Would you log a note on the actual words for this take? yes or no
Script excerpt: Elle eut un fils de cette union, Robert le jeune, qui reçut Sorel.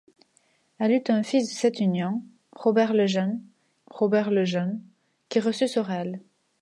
yes